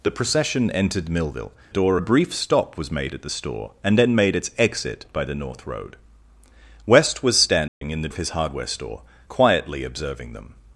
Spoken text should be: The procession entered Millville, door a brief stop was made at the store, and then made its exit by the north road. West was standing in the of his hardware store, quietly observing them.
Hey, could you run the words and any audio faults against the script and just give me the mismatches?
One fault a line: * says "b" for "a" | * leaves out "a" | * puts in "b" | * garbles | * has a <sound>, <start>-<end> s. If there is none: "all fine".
* has a dropout, 7.7-7.8 s